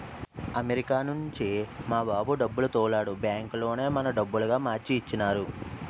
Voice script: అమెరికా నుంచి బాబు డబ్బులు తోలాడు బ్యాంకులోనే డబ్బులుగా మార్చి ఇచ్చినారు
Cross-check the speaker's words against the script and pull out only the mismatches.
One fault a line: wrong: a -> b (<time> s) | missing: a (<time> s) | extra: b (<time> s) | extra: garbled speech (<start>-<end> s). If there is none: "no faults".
extra: మా (1.9 s)
extra: మన (3.9 s)